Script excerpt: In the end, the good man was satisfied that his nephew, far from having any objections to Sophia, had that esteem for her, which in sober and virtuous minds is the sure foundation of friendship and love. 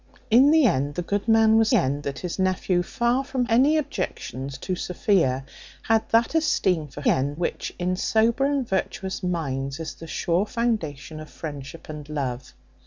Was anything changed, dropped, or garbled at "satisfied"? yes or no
yes